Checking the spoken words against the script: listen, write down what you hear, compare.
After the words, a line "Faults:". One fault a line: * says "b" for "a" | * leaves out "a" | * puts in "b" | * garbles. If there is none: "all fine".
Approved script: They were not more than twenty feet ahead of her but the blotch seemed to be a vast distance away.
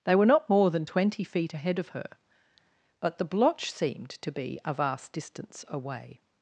They were not more than twenty feet ahead of her but the blotch seemed to be a vast distance away.
Faults:
all fine